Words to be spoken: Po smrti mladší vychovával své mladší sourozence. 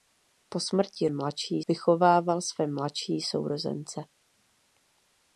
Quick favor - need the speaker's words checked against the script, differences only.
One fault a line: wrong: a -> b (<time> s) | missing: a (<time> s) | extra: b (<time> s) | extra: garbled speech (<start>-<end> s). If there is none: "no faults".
no faults